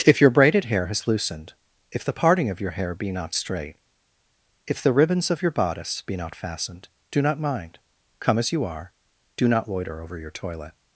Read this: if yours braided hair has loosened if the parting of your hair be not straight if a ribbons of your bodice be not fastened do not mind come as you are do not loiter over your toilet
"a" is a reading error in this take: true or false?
true